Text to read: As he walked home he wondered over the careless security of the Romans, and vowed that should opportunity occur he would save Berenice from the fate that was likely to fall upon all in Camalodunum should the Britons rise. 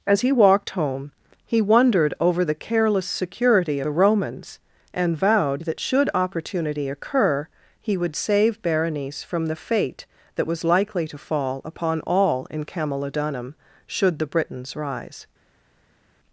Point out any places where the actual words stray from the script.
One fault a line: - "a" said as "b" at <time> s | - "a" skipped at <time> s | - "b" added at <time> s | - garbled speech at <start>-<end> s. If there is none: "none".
- "of" skipped at 3.8 s